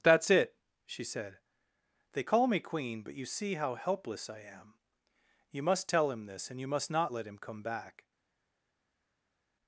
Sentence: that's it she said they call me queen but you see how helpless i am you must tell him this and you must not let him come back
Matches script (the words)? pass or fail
pass